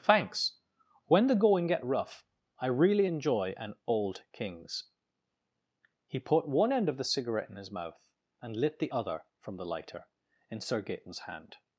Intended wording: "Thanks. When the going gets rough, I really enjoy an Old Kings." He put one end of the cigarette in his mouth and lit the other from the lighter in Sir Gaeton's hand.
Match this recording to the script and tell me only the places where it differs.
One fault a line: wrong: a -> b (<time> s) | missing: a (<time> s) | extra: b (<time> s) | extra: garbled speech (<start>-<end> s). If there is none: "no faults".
wrong: gets -> get (1.7 s)